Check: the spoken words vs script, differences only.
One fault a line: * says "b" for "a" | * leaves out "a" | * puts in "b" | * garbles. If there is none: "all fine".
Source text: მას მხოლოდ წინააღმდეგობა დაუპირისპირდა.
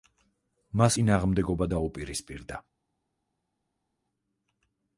* leaves out "მხოლოდ"